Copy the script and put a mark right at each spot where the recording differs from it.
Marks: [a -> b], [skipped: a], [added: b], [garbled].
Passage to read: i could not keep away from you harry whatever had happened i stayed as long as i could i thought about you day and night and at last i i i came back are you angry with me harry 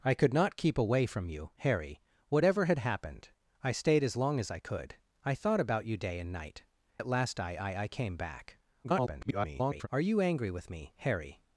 i could not keep away from you harry whatever had happened i stayed as long as i could i thought about you day and night [skipped: and] at last i i i came back [garbled] are you angry with me harry